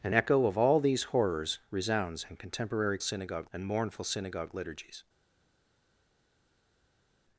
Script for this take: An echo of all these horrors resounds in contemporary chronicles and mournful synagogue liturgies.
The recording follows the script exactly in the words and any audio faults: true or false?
false